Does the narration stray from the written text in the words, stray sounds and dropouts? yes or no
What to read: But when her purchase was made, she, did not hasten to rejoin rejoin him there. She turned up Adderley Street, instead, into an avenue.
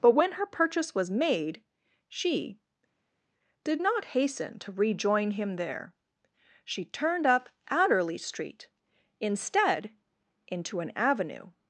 yes